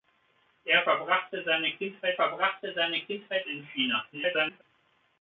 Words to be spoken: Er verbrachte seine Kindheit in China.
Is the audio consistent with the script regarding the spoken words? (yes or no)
no